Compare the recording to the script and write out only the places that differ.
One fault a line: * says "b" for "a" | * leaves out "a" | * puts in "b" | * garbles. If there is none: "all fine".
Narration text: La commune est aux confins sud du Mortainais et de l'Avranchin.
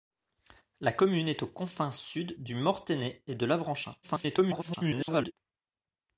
* garbles